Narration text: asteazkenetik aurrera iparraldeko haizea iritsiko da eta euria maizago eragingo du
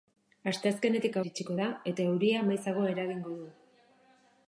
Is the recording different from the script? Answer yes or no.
yes